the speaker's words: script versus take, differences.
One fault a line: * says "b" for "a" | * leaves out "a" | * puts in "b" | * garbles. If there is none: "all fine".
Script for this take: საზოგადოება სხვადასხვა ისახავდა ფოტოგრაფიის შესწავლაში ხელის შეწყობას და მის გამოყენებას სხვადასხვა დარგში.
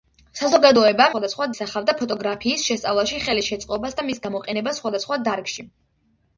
all fine